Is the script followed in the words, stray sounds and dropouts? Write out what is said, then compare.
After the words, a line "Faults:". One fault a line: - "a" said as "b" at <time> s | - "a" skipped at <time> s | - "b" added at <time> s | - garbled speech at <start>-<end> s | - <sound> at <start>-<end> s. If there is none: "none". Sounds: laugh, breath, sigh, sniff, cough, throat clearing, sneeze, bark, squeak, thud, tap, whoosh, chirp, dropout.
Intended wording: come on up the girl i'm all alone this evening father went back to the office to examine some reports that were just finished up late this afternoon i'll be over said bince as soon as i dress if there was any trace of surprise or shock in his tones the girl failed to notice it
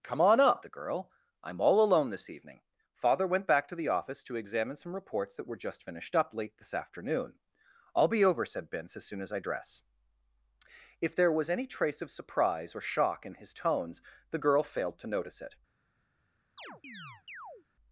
come on up the girl i'm all alone this evening father went back to the office to examine some reports that were just finished up late this afternoon i'll be over said bince as soon as i dress if there was any trace of surprise or shock in his tones the girl failed to notice it
Faults:
- chirp at 16.6-17.7 s